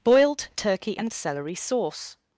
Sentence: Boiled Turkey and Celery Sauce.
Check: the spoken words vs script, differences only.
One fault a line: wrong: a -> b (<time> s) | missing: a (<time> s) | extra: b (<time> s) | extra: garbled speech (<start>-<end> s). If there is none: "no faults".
no faults